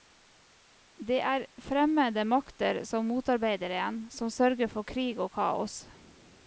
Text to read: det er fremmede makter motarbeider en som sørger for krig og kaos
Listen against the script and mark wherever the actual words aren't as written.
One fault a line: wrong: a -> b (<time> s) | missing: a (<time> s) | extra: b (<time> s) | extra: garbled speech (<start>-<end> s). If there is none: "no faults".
extra: som (2.9 s)